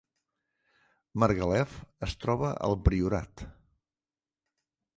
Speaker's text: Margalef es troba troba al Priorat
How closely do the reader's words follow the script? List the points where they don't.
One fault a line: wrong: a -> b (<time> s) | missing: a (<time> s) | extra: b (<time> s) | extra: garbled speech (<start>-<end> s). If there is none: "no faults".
missing: troba (2.5 s)